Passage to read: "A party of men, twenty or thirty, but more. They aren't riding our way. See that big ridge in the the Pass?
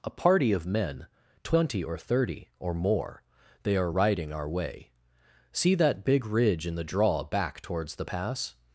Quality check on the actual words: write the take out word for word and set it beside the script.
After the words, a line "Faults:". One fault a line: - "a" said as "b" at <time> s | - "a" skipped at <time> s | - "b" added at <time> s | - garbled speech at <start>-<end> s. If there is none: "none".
"A party of men, twenty or thirty, or more. They are riding our way. See that big ridge in the draw back towards the Pass?
Faults:
- "but" said as "or" at 2.6 s
- "aren't" said as "are" at 3.8 s
- "draw back towards" added at 6.8 s